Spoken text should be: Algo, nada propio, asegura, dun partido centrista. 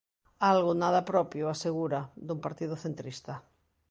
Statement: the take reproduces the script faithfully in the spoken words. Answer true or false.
true